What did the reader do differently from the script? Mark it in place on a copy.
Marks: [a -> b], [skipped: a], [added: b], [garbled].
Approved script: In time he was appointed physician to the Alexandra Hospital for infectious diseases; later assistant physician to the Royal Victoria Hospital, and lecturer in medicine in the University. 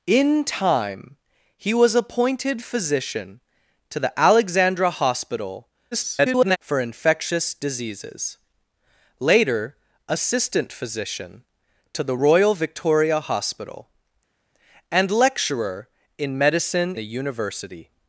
In time he was appointed physician to the Alexandra Hospital [garbled] for infectious diseases; later assistant physician to the Royal Victoria Hospital, and lecturer in medicine [skipped: in] the University.